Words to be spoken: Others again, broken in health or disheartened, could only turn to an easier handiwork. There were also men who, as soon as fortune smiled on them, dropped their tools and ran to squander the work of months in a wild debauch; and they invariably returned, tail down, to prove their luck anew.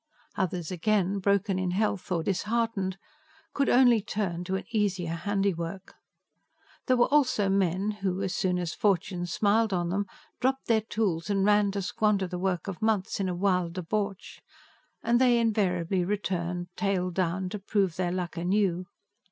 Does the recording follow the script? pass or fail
pass